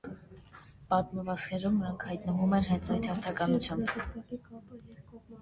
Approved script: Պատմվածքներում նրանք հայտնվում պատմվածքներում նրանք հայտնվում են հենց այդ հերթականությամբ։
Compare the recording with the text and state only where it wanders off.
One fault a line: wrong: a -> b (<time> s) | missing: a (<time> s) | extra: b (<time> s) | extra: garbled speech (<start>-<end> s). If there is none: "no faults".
missing: պատմվածքներում նրանք հայտնվում (2.6 s)